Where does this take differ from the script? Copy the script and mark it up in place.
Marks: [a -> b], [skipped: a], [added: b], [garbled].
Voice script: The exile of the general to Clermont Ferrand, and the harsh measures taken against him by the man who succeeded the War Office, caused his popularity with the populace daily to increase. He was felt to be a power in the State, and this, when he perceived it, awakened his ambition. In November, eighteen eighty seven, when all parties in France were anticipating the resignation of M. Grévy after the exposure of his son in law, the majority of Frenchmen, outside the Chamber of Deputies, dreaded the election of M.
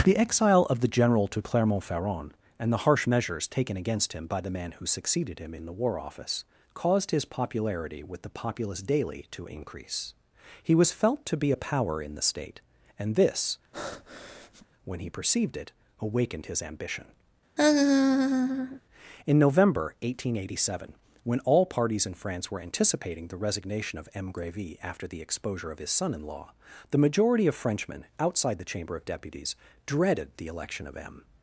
The exile of the general to Clermont Ferrand, and the harsh measures taken against him by the man who succeeded [added: him in] the War Office, caused his popularity with the populace daily to increase. He was felt to be a power in the State, and this, when he perceived it, awakened his ambition. In November, eighteen eighty seven, when all parties in France were anticipating the resignation of M. Grévy after the exposure of his son in law, the majority of Frenchmen, outside the Chamber of Deputies, dreaded the election of M.